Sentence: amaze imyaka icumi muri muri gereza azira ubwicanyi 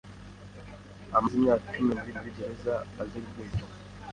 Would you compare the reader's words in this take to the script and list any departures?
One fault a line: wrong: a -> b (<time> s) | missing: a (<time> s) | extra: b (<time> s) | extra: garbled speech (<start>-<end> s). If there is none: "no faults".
no faults